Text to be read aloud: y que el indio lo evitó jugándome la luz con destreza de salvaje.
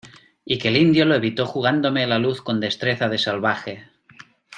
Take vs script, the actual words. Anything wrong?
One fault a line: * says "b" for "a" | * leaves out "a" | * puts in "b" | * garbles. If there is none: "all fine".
all fine